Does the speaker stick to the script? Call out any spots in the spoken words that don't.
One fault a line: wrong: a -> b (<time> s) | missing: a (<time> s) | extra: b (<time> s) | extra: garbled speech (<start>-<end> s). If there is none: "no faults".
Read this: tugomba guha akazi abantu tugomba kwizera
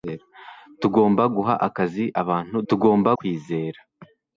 no faults